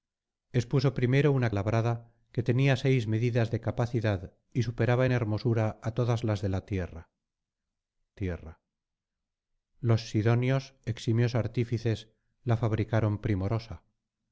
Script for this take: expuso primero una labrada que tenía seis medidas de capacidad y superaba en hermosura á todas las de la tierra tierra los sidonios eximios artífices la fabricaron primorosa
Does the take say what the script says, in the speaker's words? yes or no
yes